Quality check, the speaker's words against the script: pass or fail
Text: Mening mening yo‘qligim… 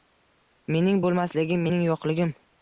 fail